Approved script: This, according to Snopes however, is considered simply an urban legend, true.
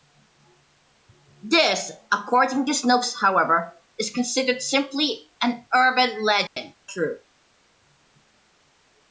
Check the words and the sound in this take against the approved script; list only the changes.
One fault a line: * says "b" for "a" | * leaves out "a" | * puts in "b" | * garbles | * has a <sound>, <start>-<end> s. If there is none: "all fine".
* has a dropout, 6.5-6.6 s